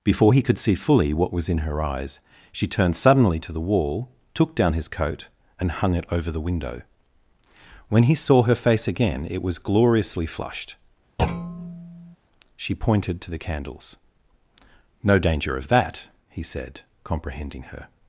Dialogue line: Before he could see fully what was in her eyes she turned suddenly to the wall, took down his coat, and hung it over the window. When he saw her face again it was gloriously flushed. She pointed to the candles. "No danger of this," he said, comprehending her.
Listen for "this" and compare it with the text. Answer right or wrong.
wrong